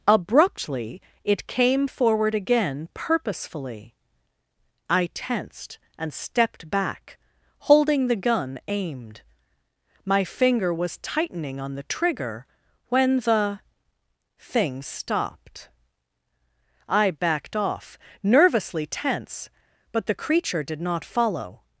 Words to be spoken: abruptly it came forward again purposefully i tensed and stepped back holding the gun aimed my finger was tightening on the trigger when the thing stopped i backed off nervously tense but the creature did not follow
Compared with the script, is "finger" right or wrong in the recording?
right